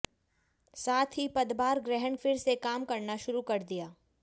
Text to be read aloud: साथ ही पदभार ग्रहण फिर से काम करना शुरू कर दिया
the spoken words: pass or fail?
pass